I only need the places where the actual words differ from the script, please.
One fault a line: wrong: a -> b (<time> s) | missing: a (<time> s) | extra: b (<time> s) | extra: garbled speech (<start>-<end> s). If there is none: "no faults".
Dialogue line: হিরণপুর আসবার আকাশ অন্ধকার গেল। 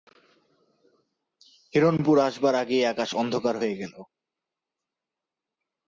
extra: আগেই (2.5 s)
extra: হয়ে (3.6 s)